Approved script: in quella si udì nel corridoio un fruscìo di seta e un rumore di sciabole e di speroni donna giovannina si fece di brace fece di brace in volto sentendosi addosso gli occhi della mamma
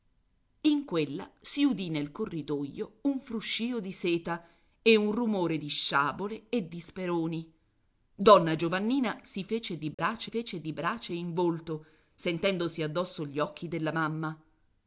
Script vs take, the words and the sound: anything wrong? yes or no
yes